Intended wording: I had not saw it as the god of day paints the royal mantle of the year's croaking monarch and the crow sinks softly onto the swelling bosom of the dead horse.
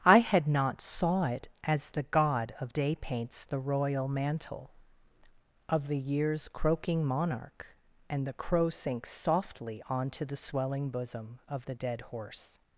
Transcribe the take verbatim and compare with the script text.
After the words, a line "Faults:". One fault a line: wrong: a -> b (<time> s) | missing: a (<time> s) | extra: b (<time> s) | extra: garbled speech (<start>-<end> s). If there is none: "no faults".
I had not saw it as the god of day paints the royal mantle of the year's croaking monarch and the crow sinks softly onto the swelling bosom of the dead horse.
Faults:
no faults